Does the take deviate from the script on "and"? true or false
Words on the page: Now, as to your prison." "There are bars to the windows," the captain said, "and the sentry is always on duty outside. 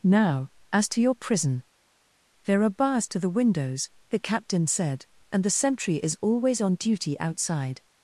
false